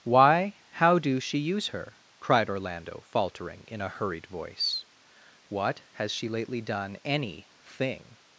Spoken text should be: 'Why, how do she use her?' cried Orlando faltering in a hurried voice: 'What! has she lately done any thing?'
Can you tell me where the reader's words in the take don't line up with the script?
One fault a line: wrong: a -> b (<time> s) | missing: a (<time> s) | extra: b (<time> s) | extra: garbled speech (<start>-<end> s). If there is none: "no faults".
no faults